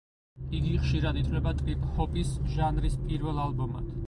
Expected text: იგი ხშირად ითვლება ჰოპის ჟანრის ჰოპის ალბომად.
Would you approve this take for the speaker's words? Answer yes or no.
no